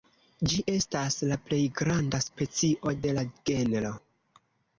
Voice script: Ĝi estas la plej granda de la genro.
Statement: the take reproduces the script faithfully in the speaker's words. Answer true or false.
false